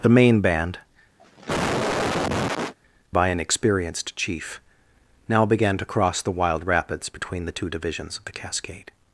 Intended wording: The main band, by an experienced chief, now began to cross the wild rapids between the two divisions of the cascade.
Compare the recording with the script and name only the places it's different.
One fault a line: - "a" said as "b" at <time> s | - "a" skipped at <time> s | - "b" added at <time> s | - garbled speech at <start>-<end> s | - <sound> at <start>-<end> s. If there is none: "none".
- cough at 1.2-2.7 s